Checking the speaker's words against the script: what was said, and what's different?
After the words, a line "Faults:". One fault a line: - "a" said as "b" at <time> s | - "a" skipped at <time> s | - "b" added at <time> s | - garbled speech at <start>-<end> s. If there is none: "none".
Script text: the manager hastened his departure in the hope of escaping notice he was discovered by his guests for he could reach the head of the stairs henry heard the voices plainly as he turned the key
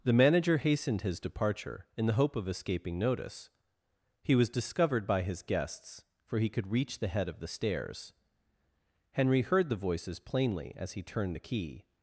the manager hastened his departure in the hope of escaping notice he was discovered by his guests for he could reach the head of the stairs henry heard the voices plainly as he turned the key
Faults:
none